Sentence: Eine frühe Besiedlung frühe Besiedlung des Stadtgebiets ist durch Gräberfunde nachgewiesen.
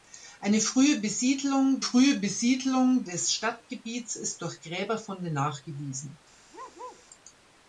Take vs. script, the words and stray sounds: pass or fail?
fail